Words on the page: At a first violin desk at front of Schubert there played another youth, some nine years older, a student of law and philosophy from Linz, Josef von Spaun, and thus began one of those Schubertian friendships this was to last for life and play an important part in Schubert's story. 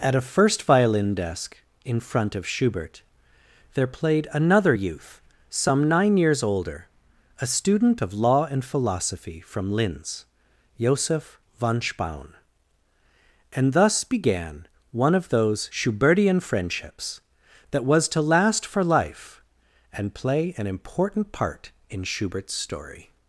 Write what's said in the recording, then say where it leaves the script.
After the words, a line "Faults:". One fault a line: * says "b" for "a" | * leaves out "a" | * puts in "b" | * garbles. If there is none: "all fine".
At a first violin desk in front of Schubert there played another youth, some nine years older, a student of law and philosophy from Linz, Josef von Spaun, and thus began one of those Schubertian friendships that was to last for life and play an important part in Schubert's story.
Faults:
* says "in" for "at"
* says "that" for "this"